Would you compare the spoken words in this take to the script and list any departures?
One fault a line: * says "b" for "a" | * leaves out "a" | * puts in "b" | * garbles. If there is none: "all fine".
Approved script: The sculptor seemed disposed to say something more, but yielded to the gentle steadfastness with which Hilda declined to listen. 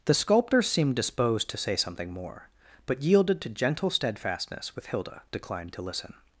* leaves out "the"
* leaves out "which"